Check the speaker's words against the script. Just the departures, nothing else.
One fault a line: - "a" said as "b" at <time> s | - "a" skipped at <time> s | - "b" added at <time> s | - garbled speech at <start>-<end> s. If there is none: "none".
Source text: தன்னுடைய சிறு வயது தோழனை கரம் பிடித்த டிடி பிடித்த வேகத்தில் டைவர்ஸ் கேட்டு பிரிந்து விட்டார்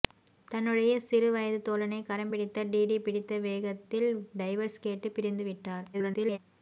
- garbled speech at 5.9-6.4 s